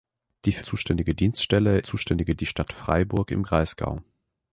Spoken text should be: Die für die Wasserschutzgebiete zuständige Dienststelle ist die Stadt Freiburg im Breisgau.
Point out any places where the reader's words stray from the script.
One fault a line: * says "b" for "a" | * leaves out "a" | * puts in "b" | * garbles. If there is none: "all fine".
* leaves out "die Wasserschutzgebiete"
* says "zuständige" for "ist"